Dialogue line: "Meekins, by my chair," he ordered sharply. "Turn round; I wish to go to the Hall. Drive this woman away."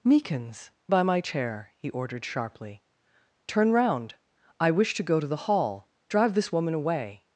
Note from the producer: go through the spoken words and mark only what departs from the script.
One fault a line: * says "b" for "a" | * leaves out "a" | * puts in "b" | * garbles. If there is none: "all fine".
all fine